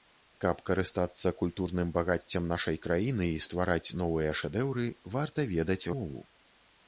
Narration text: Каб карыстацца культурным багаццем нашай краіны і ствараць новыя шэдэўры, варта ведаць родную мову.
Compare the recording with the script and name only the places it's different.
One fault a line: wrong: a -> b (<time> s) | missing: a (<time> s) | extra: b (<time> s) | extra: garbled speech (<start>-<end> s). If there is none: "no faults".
missing: родную (5.8 s)